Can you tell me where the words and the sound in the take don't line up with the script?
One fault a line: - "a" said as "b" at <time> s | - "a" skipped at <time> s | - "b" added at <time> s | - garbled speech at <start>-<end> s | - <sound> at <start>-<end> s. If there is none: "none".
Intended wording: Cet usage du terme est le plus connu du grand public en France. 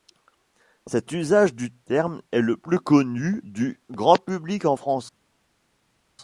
none